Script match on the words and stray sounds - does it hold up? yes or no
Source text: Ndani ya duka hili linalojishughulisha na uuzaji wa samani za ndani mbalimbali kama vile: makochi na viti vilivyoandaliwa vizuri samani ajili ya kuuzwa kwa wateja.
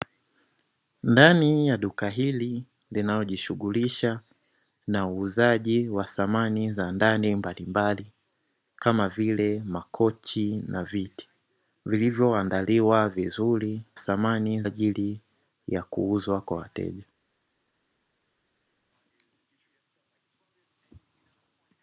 yes